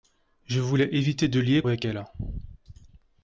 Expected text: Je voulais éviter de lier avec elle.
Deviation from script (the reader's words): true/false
false